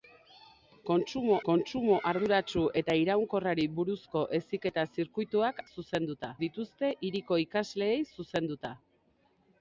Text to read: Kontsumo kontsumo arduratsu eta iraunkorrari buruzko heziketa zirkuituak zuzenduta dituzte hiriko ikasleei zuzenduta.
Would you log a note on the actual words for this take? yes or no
no